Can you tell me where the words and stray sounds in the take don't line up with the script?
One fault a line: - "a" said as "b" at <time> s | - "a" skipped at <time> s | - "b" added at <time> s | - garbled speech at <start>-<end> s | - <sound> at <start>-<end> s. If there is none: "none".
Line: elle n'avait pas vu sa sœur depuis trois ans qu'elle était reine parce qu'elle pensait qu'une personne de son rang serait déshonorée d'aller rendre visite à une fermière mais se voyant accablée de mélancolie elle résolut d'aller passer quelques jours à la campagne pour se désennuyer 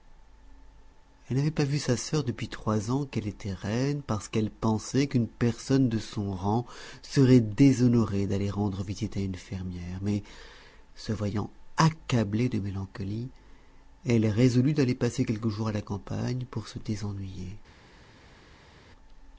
none